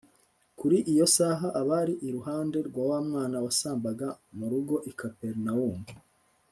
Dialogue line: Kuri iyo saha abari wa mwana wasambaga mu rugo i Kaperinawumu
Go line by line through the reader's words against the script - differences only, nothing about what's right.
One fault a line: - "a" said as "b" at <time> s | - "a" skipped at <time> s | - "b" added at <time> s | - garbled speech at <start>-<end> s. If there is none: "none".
- "iruhande rwa" added at 2.1 s